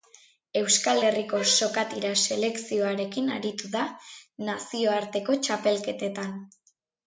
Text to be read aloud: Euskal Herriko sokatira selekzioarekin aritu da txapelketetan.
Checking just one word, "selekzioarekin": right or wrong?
right